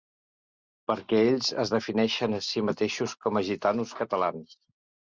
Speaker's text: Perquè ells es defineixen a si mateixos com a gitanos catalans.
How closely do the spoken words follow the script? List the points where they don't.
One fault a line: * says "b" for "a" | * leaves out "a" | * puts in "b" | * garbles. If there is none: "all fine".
all fine